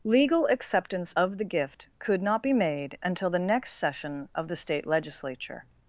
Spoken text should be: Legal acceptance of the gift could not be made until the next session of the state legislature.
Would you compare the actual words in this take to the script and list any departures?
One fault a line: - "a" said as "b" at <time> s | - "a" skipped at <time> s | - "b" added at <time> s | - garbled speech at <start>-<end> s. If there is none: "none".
none